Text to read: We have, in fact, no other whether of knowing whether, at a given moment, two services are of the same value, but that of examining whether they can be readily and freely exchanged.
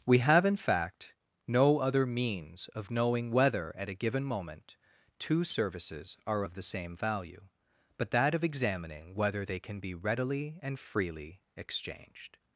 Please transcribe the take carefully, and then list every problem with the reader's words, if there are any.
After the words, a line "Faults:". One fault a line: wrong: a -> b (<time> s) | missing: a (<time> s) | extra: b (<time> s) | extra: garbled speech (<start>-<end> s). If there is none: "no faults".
We have, in fact, no other means of knowing whether, at a given moment, two services are of the same value, but that of examining whether they can be readily and freely exchanged.
Faults:
wrong: whether -> means (2.0 s)